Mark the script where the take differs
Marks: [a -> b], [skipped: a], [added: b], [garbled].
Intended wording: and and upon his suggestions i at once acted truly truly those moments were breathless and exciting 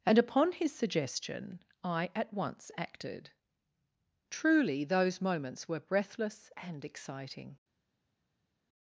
and [skipped: and] upon his [suggestions -> suggestion] i at once acted truly [skipped: truly] those moments were breathless and exciting